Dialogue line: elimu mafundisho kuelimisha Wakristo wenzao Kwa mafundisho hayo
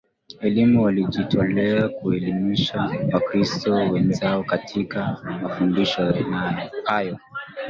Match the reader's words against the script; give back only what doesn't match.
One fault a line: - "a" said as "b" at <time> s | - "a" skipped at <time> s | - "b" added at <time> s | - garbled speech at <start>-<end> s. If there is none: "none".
- "mafundisho" said as "walijitolea" at 0.8 s
- "Kwa" said as "Katika" at 4.4 s